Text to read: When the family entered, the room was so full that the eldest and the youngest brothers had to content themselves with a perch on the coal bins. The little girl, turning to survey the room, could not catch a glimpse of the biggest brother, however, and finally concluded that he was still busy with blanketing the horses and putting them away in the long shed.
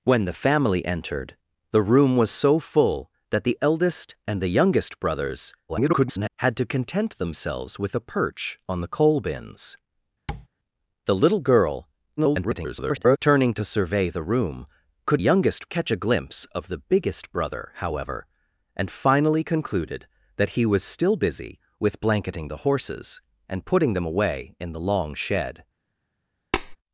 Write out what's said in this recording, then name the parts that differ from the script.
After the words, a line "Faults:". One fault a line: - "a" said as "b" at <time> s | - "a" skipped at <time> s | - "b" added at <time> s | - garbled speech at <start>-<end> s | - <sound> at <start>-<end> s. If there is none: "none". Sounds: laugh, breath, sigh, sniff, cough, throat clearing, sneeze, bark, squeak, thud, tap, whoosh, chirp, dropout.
When the family entered, the room was so full that the eldest and the youngest brothers [garbled] had to content themselves with a perch on the coal bins. The little girl, [garbled] turning to survey the room, could youngest catch a glimpse of the biggest brother, however, and finally concluded that he was still busy with blanketing the horses and putting them away in the long shed.
Faults:
- garbled speech at 5.7-6.3 s
- tap at 10.3-10.5 s
- garbled speech at 12.2-13.2 s
- "not" said as "youngest" at 15.2 s
- tap at 26.5-26.8 s